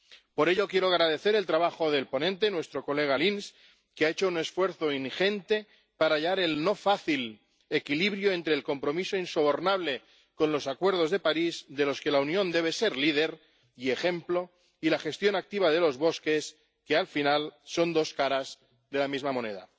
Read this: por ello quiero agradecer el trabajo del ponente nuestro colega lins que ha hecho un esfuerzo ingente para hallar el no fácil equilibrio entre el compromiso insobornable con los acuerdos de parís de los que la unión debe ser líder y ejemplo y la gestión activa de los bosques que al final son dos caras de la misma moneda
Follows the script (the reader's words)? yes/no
yes